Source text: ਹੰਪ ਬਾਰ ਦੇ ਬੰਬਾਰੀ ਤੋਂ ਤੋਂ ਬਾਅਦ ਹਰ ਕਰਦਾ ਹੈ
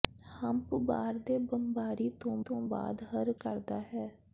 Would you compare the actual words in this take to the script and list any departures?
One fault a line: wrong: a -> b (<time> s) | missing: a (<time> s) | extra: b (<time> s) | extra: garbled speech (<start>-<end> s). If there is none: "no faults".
no faults